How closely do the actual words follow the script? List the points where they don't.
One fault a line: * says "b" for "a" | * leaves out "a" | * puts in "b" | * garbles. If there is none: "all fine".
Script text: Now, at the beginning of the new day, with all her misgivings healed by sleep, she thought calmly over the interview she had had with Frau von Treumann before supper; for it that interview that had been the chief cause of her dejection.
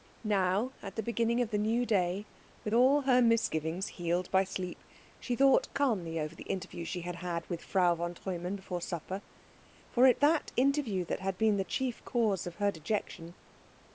all fine